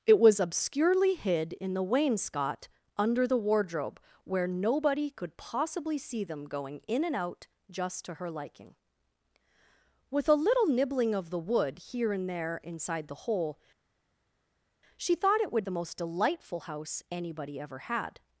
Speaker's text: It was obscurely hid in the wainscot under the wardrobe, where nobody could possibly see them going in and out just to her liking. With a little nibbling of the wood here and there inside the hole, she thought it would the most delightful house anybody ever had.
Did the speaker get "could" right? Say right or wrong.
right